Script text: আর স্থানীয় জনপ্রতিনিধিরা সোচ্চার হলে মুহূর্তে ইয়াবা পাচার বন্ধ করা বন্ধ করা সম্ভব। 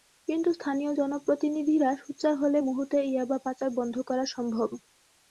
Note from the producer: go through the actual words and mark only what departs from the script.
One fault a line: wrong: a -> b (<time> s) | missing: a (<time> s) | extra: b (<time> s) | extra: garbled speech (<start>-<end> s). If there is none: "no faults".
wrong: আর -> কিন্তু (0.3 s)
missing: বন্ধ করা (4.2 s)